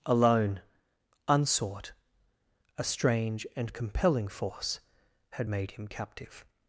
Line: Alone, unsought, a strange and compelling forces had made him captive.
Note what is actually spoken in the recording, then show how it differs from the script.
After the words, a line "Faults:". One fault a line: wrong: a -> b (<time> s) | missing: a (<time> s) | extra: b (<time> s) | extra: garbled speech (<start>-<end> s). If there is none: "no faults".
Alone, unsought, a strange and compelling force had made him captive.
Faults:
wrong: forces -> force (4.3 s)